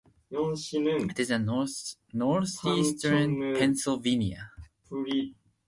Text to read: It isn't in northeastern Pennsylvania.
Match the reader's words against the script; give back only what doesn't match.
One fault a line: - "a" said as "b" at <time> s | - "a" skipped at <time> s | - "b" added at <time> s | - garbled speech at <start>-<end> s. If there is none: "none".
- "isn't" said as "is" at 1.2 s